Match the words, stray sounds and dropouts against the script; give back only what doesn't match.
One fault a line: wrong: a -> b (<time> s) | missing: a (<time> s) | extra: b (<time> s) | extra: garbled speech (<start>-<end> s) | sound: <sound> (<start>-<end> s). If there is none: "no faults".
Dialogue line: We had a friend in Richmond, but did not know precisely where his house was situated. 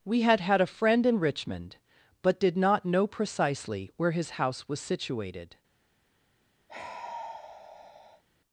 extra: had (0.4 s)
sound: sigh (6.7-8.2 s)